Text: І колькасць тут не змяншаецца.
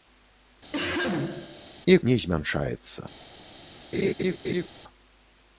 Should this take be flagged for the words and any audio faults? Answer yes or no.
yes